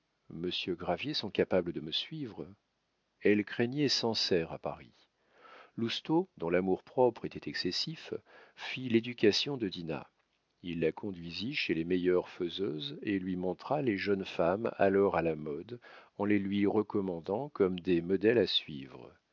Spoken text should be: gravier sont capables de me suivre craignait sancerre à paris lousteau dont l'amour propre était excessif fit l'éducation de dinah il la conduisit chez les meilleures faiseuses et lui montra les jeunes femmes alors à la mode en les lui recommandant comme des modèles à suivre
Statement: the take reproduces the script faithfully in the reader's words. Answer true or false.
false